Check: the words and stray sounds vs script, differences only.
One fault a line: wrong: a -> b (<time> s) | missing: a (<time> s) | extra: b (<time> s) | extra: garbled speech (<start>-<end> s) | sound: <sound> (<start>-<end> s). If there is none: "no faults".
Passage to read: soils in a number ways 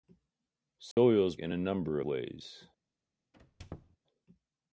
sound: dropout (0.9-1.0 s)
sound: squeak (3.3-4.0 s)